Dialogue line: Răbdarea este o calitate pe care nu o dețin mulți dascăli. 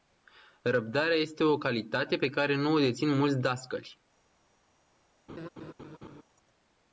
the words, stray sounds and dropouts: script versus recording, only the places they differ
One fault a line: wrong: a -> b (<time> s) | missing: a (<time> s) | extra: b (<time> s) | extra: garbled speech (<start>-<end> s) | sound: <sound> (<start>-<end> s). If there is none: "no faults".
sound: laugh (5.3-6.2 s)